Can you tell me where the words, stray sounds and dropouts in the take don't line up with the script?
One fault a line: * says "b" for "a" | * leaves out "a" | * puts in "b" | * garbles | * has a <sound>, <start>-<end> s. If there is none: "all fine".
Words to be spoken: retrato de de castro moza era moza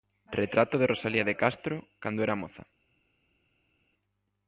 * puts in "rosalía"
* says "cando" for "moza"